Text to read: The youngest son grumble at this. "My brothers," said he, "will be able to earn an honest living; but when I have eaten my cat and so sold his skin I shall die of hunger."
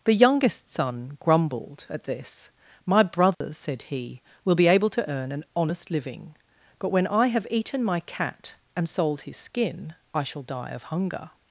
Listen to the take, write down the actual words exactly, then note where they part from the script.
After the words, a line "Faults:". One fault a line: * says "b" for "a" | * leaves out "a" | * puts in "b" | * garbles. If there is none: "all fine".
The youngest son grumbled at this. "My brothers," said he, "will be able to earn an honest living; but when I have eaten my cat and sold his skin I shall die of hunger."
Faults:
* says "grumbled" for "grumble"
* leaves out "so"